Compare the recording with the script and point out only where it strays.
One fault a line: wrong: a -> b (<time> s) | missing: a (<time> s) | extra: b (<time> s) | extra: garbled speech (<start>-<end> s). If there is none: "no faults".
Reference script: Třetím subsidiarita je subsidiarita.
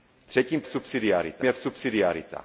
no faults